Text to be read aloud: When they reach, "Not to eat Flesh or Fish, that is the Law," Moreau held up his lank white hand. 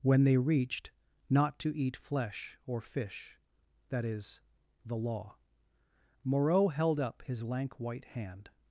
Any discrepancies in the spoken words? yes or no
yes